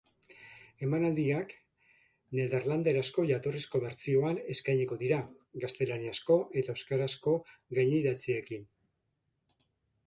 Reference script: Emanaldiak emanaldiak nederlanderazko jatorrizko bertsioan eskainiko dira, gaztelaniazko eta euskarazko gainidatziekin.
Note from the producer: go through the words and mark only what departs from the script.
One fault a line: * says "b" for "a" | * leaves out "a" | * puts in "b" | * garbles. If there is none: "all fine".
* leaves out "emanaldiak"